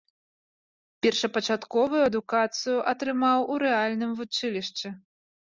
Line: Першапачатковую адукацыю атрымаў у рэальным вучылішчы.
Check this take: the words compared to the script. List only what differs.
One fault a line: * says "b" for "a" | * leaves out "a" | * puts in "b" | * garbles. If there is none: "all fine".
all fine